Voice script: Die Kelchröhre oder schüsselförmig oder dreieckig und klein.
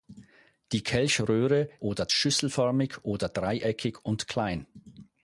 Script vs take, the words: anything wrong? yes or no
no